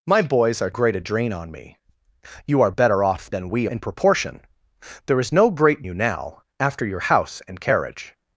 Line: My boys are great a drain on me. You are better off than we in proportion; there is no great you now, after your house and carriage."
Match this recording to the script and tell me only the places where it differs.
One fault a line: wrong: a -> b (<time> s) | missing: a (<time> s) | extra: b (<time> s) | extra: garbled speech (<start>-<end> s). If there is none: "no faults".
no faults